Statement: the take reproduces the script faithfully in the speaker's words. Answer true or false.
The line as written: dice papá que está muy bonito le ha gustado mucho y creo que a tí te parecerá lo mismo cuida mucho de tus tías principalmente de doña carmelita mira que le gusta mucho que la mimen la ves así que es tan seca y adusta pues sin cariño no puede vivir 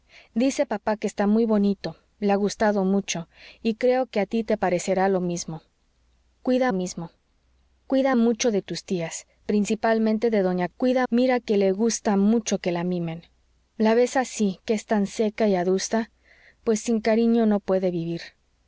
false